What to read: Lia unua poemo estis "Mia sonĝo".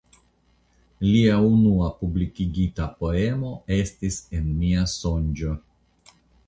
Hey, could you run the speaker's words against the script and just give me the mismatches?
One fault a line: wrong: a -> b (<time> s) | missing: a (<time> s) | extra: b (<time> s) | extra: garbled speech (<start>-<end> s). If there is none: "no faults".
extra: publikigita (2.0 s)
extra: En (4.4 s)